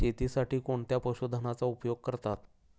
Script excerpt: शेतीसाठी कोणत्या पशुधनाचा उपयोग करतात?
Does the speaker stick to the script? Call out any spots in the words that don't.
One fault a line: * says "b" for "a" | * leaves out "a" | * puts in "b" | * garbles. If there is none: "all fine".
all fine